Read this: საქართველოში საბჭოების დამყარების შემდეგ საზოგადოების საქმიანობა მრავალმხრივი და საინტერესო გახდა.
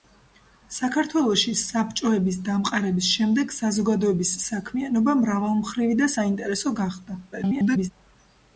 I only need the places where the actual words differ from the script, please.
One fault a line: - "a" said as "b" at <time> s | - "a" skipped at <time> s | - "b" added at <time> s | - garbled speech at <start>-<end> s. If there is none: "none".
- garbled speech at 7.3-7.9 s